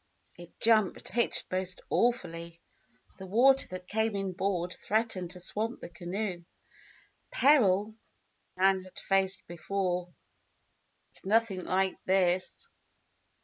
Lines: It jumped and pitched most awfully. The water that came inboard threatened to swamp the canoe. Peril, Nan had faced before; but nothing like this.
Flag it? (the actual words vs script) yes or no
yes